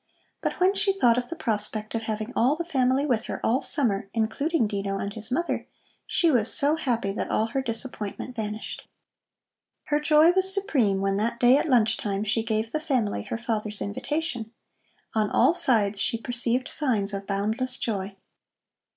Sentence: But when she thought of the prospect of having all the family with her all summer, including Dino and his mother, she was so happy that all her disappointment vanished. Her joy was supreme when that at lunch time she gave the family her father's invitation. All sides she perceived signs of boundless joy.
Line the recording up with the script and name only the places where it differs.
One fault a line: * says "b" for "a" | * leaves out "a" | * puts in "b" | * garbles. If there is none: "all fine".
* puts in "day"
* puts in "On"